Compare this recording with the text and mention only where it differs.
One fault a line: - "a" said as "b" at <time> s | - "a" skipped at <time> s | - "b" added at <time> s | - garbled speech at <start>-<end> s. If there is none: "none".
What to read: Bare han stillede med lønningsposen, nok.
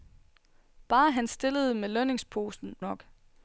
none